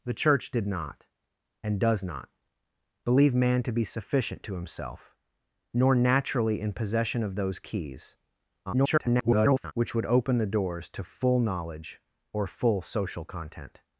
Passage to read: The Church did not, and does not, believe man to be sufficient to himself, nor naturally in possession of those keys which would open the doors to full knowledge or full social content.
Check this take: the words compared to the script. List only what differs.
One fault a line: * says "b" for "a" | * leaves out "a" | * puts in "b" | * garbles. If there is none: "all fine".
* garbles